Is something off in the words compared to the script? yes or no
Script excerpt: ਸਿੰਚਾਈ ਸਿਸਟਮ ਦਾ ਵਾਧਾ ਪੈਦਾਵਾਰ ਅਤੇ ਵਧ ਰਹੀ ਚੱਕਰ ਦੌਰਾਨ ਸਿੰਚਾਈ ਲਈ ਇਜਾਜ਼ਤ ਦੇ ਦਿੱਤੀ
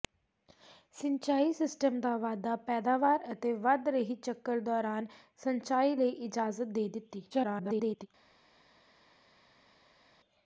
yes